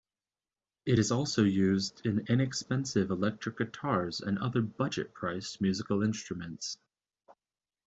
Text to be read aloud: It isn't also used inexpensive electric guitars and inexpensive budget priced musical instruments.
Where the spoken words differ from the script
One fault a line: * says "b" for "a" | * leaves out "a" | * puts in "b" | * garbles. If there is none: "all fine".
* says "is" for "isn't"
* puts in "in"
* says "other" for "inexpensive"